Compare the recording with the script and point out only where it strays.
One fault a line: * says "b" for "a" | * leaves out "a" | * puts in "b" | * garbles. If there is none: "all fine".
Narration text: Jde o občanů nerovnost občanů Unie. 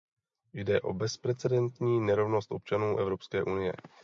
* says "bezprecedentní" for "občanů"
* puts in "Evropské"